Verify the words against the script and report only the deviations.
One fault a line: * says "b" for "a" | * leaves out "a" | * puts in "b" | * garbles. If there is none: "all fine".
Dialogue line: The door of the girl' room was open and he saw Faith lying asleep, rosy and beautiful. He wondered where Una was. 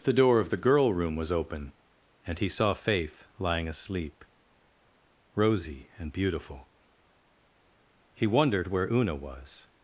all fine